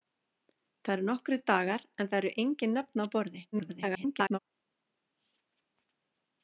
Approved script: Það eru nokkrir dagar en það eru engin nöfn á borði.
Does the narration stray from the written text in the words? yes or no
yes